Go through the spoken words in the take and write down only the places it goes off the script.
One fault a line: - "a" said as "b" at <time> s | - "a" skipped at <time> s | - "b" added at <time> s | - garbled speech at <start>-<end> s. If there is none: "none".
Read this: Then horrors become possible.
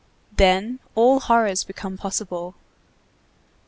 - "all" added at 0.9 s